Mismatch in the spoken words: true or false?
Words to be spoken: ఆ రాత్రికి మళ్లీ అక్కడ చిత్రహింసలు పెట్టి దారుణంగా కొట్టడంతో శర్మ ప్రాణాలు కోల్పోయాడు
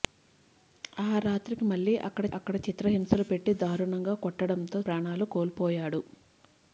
true